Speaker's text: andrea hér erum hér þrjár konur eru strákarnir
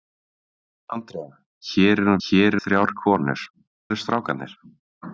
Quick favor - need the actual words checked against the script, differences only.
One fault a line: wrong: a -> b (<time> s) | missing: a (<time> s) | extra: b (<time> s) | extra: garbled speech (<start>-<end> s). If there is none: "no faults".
no faults